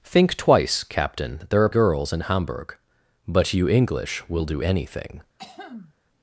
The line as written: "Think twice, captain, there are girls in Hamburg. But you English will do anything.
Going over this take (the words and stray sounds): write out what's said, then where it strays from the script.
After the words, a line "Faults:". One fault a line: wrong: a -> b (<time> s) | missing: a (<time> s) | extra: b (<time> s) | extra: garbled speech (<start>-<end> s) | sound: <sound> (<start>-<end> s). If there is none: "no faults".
"Think twice, captain, there are girls in Hamburg. But you English will do anything.
Faults:
sound: throat clearing (5.4-5.9 s)